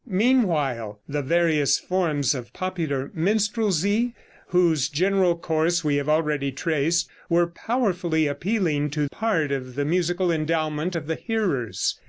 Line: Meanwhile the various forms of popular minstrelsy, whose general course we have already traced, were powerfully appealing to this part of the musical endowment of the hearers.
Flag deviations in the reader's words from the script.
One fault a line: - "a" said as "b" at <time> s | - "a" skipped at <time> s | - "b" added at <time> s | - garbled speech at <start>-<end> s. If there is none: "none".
- "this" skipped at 9.1 s